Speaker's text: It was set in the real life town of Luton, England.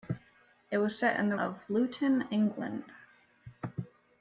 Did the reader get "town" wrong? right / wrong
wrong